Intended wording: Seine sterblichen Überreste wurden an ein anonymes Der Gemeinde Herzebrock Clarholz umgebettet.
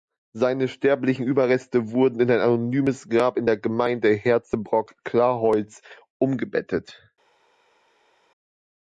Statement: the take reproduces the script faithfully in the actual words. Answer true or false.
false